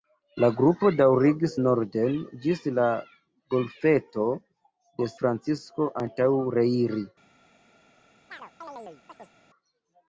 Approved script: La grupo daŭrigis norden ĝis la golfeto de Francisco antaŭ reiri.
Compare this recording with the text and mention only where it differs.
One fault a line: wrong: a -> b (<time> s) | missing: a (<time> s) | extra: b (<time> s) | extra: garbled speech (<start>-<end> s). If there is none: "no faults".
no faults